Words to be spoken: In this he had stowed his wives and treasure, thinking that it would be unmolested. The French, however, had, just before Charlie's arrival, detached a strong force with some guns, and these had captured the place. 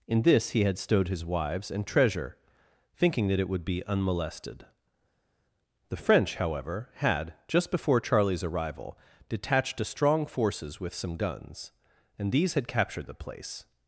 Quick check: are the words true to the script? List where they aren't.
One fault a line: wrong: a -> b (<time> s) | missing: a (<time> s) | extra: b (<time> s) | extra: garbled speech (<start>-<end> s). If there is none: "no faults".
wrong: force -> forces (10.3 s)